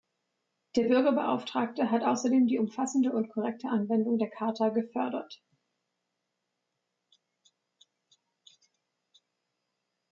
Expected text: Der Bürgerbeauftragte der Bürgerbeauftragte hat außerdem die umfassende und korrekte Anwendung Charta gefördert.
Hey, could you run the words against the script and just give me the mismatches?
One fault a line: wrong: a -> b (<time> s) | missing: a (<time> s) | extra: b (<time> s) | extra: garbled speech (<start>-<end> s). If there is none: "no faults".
missing: der Bürgerbeauftragte (1.9 s)
extra: der (4.2 s)